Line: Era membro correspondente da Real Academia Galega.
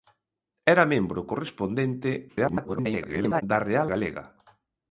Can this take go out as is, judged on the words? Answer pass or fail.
fail